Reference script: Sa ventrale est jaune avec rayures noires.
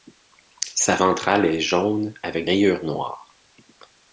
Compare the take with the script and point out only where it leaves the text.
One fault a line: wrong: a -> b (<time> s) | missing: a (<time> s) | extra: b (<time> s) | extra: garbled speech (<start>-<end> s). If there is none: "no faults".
no faults